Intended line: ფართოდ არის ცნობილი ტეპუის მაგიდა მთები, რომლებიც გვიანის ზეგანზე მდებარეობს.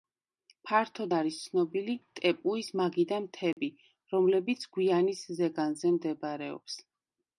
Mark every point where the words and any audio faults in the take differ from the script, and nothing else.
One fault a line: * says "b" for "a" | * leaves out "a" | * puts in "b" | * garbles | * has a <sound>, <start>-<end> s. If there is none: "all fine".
* has a dropout, 3.5-3.6 s